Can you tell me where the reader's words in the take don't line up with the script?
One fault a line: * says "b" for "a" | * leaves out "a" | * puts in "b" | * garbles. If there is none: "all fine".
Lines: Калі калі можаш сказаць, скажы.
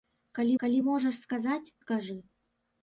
all fine